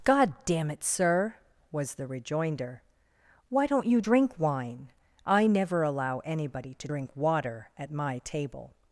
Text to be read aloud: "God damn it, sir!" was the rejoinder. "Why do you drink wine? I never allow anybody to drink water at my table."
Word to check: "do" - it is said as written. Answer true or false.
false